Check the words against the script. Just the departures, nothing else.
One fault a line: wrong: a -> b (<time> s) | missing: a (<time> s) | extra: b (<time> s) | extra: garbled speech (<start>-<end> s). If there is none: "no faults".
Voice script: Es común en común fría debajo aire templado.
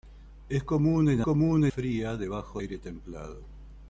no faults